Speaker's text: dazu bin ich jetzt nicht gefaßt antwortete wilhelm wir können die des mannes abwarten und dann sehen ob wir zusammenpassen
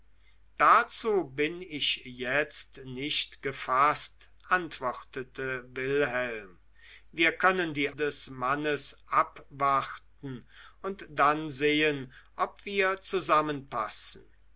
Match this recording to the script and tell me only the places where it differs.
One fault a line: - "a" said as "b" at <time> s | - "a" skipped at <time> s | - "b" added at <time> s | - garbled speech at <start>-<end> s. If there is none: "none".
none